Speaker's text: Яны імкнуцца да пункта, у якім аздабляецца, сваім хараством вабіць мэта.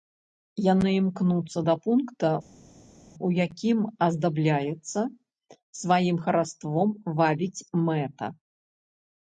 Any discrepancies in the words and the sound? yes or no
no